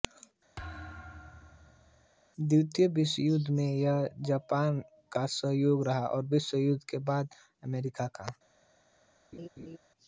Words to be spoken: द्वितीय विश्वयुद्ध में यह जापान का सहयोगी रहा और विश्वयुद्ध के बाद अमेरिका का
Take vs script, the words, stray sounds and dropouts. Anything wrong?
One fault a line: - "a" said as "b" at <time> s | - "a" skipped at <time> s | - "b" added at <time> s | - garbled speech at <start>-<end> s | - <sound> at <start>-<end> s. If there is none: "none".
- thud at 0.6-2.1 s
- laugh at 9.3-9.8 s